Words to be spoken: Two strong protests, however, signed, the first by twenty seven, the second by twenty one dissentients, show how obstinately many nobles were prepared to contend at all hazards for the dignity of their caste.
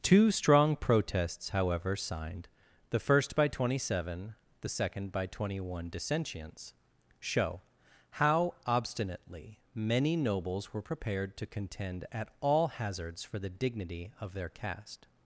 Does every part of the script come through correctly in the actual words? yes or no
yes